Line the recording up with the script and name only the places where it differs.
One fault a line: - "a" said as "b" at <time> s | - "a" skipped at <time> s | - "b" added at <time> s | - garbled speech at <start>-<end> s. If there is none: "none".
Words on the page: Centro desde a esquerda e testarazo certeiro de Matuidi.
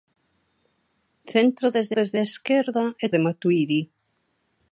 - "desde" added at 2.0 s
- "testarazo certeiro" skipped at 3.1 s